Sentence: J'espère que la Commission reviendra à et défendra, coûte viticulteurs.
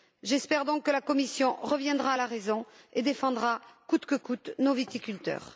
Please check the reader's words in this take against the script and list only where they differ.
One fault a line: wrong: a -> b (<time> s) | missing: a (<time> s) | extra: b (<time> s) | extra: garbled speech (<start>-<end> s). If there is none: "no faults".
extra: donc (0.7 s)
extra: la raison (2.2 s)
extra: que coûte nos (4.0 s)